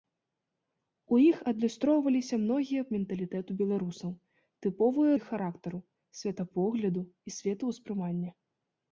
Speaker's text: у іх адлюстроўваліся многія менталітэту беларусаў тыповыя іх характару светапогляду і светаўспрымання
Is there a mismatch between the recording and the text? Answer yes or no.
no